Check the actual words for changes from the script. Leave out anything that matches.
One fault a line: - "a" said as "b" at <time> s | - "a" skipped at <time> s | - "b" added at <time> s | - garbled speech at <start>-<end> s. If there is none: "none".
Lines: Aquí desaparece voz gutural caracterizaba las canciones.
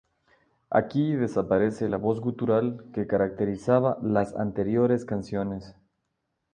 - "la" added at 1.8 s
- "que" added at 2.9 s
- "anteriores" added at 4.4 s